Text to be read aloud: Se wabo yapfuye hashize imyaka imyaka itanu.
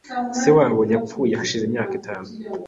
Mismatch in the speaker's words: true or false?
true